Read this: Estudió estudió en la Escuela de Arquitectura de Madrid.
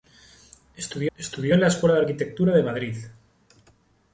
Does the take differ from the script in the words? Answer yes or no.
no